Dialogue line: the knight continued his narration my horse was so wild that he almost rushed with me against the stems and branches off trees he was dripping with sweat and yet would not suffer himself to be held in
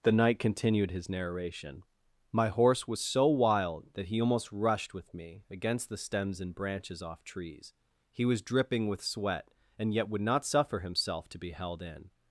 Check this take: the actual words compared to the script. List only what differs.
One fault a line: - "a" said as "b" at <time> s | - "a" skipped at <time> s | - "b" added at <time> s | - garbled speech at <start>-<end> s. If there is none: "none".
none